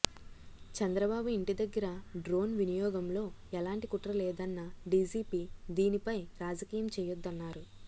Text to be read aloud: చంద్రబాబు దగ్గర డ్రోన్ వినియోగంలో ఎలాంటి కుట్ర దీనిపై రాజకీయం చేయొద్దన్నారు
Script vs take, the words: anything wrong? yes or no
yes